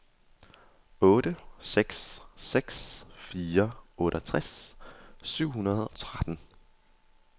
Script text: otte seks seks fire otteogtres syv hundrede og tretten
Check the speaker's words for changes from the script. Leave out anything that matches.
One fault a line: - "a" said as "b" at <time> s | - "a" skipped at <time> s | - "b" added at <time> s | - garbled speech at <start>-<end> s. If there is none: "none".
- "og" skipped at 5.9 s